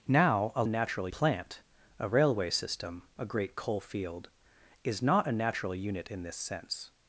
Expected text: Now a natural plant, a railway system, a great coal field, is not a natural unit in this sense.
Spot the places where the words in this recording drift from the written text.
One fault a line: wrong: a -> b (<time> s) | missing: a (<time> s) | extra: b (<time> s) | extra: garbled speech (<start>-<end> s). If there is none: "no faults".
no faults